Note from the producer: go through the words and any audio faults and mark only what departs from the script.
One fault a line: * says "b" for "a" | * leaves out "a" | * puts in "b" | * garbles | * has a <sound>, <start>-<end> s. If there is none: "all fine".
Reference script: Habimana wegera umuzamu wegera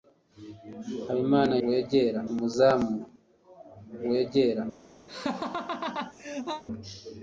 * has a laugh, 5.1-6.6 s